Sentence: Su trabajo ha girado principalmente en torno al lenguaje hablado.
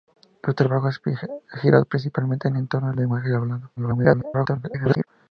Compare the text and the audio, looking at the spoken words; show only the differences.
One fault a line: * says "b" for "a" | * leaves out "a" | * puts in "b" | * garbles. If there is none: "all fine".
* garbles